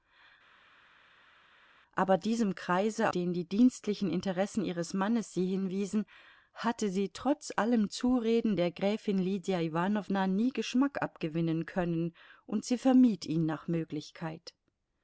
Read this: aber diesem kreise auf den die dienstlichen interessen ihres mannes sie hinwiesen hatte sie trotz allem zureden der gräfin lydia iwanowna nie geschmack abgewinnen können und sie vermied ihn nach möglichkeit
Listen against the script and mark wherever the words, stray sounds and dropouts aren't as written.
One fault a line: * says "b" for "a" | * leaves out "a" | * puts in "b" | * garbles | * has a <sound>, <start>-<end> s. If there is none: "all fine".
* leaves out "auf"